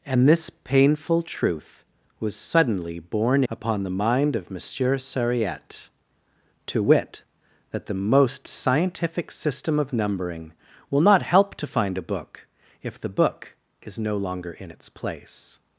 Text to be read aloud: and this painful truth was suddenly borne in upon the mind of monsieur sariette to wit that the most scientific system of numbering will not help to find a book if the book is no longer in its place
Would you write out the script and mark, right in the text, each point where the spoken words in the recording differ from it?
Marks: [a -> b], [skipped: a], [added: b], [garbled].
and this painful truth was suddenly borne [skipped: in] upon the mind of monsieur sariette to wit that the most scientific system of numbering will not help to find a book if the book is no longer in its place